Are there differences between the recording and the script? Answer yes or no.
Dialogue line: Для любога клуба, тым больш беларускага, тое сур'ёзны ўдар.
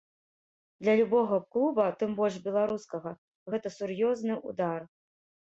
yes